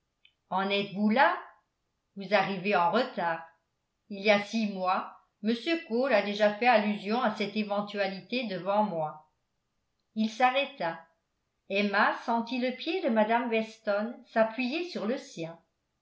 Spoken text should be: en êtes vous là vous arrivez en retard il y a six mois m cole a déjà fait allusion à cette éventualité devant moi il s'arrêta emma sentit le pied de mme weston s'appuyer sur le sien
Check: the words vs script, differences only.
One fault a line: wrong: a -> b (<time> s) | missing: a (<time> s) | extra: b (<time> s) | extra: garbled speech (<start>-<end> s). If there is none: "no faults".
no faults